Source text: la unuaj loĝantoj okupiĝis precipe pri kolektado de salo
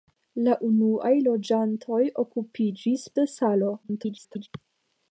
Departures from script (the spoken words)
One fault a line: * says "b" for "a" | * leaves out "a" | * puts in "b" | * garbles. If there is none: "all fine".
* leaves out "precipe pri kolektado"
* garbles